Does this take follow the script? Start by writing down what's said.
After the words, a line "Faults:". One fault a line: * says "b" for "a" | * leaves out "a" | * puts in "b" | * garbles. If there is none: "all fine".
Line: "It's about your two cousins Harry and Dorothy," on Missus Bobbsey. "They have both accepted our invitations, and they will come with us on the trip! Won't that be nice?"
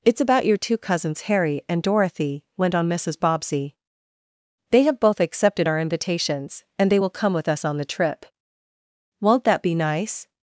"It's about your two cousins Harry and Dorothy," went on Missus Bobbsey. "They have both accepted our invitations, and they will come with us on the trip! Won't that be nice?"
Faults:
* puts in "went"